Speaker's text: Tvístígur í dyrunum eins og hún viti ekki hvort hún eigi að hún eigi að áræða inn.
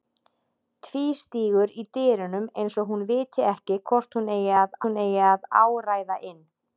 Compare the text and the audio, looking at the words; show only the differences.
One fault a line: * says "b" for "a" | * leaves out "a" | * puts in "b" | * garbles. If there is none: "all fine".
all fine